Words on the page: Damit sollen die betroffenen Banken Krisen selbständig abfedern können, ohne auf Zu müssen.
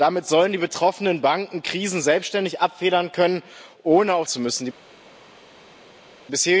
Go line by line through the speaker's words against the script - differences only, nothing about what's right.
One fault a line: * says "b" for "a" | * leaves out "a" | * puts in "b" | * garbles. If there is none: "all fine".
all fine